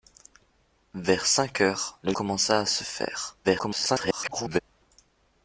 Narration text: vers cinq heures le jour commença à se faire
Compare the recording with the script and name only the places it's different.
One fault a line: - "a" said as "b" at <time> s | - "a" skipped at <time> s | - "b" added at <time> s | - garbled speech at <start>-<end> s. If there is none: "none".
- "jour" skipped at 2.1 s
- garbled speech at 3.4-4.6 s